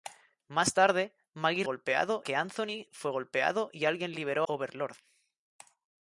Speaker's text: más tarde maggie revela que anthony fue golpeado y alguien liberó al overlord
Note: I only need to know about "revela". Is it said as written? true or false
false